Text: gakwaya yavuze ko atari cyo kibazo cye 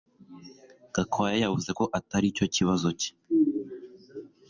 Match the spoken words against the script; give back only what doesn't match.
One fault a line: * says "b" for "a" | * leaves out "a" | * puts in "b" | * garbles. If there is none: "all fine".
all fine